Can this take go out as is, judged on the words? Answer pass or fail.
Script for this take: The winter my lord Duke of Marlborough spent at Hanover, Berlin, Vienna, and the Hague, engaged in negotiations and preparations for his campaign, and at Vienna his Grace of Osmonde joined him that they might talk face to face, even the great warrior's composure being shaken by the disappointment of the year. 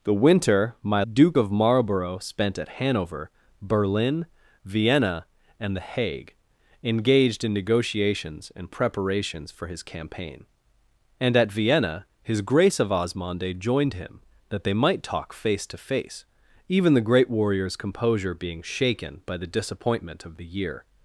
fail